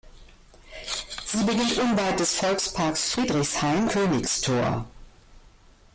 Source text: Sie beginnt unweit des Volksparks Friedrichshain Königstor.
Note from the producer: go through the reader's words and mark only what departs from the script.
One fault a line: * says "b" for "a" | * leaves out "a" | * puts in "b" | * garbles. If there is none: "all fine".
all fine